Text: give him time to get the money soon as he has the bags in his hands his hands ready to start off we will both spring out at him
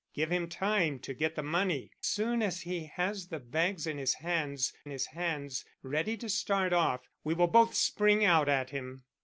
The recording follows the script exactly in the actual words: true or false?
true